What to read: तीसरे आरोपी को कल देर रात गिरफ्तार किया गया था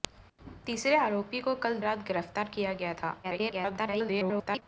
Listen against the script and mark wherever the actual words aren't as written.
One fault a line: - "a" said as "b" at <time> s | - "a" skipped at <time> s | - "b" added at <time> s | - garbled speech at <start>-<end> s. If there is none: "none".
- "देर" skipped at 1.8 s
- garbled speech at 3.2-4.6 s